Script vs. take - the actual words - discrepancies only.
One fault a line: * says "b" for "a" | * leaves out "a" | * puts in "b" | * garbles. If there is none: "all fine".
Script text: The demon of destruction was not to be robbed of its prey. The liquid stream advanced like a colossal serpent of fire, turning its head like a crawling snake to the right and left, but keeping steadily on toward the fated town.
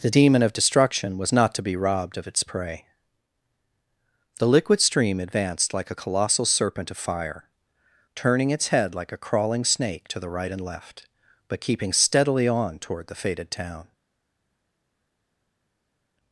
all fine